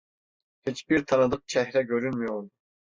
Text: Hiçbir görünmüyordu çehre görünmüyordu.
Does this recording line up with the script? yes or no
no